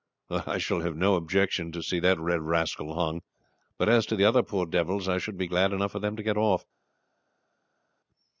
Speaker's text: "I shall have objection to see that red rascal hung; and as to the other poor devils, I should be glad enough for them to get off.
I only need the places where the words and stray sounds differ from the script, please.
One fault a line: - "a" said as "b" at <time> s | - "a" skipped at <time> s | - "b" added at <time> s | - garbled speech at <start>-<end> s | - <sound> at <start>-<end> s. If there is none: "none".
- "no" added at 0.9 s
- "and" said as "but" at 3.8 s